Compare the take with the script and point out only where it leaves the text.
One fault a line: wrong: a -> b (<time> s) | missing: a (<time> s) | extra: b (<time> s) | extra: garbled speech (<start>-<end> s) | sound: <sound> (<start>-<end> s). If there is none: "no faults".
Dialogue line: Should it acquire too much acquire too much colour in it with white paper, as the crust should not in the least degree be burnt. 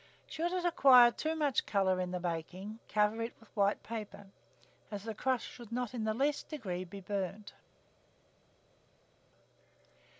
wrong: acquire too much colour in -> colour in the baking cover (1.7 s)